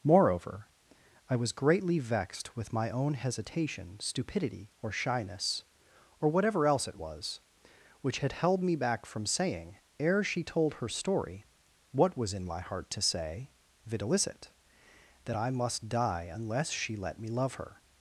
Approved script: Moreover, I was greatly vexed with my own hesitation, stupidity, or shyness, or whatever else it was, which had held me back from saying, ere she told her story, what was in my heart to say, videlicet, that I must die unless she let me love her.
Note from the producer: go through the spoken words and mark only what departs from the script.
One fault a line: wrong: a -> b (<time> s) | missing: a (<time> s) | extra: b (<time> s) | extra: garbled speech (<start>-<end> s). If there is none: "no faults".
no faults